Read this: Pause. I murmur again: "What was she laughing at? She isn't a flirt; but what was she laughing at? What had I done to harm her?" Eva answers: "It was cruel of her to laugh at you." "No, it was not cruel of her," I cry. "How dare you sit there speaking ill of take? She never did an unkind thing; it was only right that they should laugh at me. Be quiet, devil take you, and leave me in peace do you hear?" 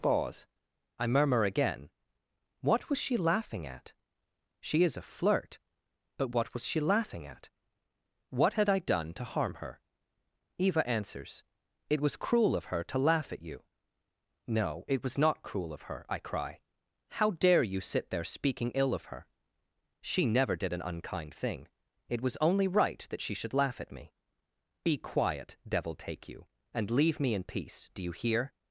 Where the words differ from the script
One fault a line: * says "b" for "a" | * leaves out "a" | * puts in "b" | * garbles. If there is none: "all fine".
* says "is" for "isn't"
* says "her" for "take"
* says "she" for "they"